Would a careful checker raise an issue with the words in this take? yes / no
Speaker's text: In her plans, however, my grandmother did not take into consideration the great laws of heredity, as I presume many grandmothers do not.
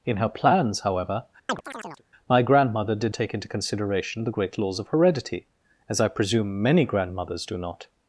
yes